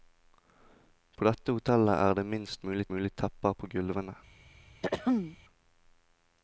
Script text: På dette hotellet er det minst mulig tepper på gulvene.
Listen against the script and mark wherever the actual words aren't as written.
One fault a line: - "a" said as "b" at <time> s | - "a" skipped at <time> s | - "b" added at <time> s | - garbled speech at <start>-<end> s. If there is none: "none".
- "mulig" added at 2.9 s